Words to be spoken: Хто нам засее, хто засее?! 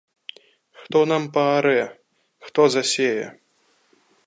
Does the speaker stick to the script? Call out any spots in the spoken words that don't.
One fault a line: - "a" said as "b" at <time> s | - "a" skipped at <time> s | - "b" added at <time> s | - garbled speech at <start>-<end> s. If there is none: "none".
- "засее" said as "паарэ" at 1.4 s